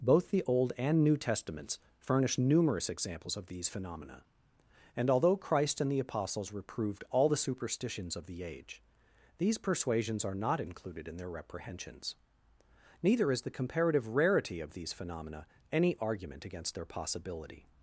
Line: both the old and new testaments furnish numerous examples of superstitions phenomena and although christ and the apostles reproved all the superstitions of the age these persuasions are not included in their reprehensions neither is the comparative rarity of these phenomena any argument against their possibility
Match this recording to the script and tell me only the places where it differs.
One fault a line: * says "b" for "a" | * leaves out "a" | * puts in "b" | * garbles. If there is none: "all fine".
* says "these" for "superstitions"